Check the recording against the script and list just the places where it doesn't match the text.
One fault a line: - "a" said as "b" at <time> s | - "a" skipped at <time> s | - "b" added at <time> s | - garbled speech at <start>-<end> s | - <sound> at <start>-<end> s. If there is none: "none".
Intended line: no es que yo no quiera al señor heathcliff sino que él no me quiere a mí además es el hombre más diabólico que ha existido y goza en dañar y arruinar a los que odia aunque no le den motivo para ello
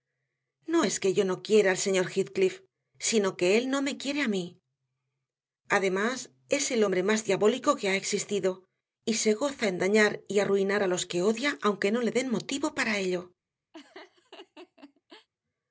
- "se" added at 9.1 s
- laugh at 13.7-15.3 s